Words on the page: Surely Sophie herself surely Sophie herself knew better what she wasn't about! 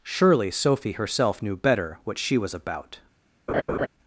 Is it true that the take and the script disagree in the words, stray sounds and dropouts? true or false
true